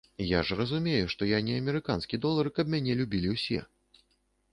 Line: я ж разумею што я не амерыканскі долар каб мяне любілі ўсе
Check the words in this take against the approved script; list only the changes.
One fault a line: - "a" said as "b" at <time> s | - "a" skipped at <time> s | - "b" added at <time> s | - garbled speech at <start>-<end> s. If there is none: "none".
none